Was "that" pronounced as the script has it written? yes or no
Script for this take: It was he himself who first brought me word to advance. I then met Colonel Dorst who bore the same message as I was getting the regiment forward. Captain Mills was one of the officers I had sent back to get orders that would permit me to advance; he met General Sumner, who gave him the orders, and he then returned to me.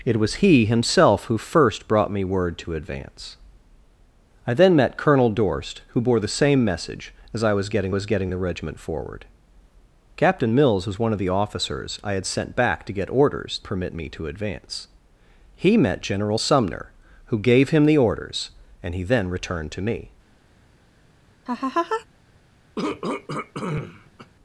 no